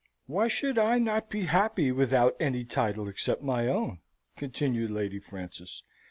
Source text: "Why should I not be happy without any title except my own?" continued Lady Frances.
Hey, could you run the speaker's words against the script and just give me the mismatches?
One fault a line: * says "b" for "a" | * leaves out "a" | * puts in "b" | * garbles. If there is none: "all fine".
all fine